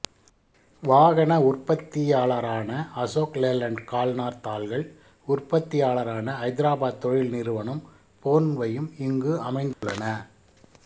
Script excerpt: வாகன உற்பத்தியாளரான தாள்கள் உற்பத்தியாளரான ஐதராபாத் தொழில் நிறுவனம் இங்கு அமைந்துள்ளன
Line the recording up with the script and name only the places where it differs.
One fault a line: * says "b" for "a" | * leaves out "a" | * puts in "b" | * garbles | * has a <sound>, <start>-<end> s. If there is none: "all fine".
* puts in "அசோக் லேலண்ட் கல்நார்"
* puts in "போன்வையும்"
* has a dropout, 9.7-9.8 s